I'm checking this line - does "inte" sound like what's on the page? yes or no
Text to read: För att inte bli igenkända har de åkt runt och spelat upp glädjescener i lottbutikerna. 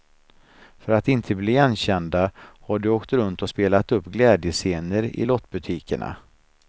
yes